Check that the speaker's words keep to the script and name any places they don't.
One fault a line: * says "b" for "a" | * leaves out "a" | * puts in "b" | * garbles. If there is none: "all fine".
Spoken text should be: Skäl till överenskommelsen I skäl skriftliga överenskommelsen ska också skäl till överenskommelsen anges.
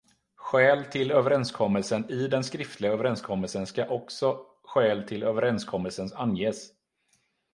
* says "den" for "skäl"